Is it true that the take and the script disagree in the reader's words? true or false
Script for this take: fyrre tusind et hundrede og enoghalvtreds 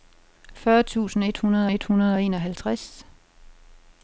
true